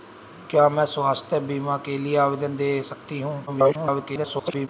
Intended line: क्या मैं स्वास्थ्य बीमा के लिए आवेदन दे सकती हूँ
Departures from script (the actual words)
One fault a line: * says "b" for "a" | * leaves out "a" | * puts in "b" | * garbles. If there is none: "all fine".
* garbles